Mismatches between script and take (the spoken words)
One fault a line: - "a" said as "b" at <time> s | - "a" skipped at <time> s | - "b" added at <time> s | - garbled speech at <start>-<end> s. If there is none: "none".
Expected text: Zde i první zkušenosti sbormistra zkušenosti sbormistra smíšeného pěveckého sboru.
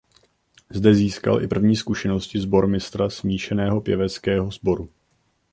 - "získal" added at 0.9 s
- "zkušenosti sbormistra" skipped at 3.1 s